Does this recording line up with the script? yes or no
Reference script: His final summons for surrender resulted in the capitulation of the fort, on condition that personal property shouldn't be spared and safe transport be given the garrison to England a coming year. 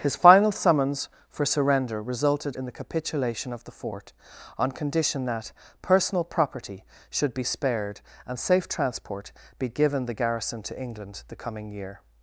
no